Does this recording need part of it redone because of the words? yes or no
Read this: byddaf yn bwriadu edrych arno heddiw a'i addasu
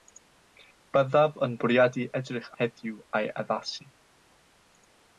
yes